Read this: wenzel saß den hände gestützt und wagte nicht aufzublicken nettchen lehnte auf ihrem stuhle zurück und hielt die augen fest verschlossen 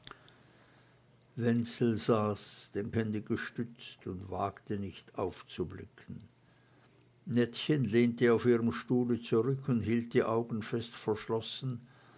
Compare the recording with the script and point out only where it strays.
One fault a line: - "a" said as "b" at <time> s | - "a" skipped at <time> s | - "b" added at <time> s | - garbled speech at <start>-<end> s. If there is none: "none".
none